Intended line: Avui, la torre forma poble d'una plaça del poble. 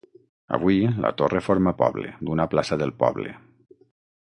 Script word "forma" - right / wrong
right